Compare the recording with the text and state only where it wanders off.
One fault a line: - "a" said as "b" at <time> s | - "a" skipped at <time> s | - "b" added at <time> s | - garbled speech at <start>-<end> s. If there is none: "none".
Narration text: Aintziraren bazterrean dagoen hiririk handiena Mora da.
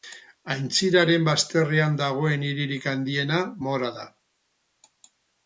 none